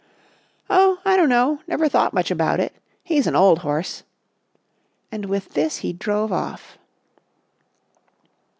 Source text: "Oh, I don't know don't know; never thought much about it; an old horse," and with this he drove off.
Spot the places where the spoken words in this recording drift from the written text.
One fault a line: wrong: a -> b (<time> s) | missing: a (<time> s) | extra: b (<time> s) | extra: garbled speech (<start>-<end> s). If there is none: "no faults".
missing: don't know (1.6 s)
extra: he's (3.0 s)